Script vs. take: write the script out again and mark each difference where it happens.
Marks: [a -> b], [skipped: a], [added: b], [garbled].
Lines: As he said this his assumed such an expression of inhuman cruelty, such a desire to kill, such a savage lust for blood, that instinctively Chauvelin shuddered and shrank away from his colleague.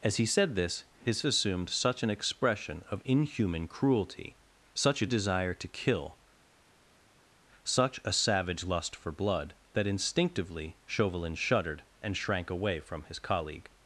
As he said this his assumed such an expression of inhuman cruelty, such a desire to kill, such a savage lust for blood, that instinctively Chauvelin shuddered and shrank away from his colleague.